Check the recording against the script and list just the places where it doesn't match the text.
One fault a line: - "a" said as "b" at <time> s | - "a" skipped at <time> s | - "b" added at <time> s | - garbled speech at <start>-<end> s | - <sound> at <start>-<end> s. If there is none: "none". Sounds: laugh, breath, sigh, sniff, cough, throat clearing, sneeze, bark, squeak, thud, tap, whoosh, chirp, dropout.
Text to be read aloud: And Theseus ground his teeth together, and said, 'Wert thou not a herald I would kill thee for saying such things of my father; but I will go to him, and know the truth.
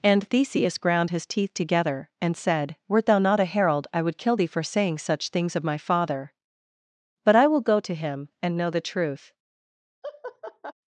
- laugh at 10.0-10.7 s